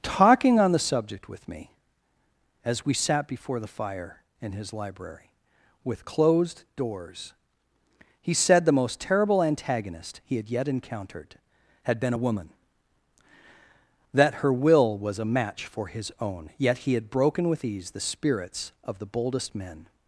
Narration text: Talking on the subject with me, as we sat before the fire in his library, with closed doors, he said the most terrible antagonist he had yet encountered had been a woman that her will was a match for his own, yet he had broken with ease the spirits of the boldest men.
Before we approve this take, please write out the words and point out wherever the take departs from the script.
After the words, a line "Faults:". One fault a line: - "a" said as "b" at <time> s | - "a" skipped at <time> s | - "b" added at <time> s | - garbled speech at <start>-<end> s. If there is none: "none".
Talking on the subject with me, as we sat before the fire in his library, with closed doors, he said the most terrible antagonist he had yet encountered had been a woman that her will was a match for his own, yet he had broken with ease the spirits of the boldest men.
Faults:
none